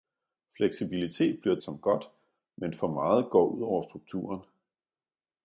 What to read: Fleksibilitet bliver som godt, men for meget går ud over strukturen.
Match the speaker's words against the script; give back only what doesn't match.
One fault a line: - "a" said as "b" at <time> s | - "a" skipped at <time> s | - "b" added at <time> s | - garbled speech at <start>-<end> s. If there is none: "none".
none